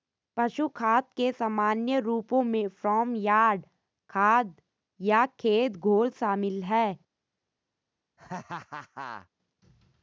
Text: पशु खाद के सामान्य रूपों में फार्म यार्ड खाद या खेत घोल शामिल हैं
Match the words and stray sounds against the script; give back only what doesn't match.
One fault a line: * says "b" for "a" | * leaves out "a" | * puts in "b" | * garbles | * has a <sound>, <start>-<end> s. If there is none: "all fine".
* has a laugh, 8.2-9.3 s